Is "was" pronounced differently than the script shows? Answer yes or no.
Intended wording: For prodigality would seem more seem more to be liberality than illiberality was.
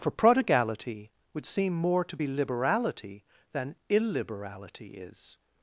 yes